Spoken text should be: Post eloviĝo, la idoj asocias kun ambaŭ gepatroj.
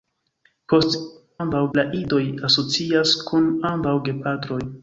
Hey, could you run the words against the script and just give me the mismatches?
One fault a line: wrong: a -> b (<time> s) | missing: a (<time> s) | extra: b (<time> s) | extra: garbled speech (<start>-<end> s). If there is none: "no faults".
wrong: eloviĝo -> ambaŭ (1.4 s)